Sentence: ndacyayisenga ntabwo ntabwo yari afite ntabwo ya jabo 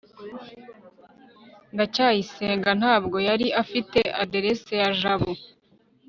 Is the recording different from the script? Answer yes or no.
yes